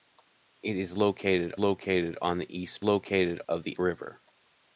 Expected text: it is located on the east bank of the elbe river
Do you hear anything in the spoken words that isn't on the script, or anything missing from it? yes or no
yes